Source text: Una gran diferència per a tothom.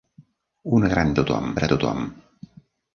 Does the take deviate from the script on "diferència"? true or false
true